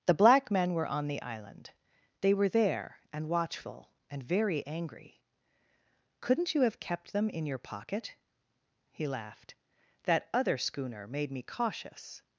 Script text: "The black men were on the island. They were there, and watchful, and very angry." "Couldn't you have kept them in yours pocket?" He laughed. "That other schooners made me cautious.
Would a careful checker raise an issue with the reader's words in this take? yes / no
yes